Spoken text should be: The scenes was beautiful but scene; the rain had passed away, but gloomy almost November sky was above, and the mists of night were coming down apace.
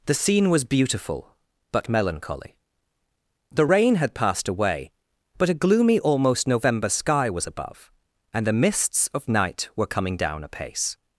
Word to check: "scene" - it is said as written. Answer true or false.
false